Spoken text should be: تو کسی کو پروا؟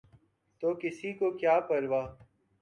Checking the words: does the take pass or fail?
fail